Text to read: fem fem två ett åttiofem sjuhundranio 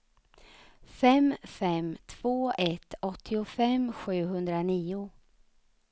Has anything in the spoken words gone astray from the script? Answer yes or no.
no